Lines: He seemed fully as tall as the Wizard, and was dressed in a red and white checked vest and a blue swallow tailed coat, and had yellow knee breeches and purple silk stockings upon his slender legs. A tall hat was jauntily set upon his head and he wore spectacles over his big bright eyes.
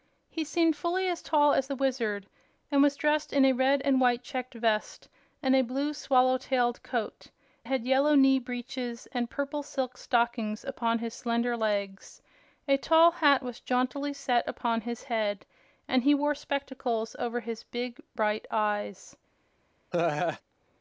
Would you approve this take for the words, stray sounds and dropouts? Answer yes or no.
no